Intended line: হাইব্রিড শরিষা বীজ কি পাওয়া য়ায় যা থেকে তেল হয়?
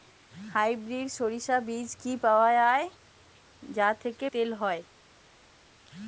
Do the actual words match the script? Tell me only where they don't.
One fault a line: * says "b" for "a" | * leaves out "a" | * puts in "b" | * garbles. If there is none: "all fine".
all fine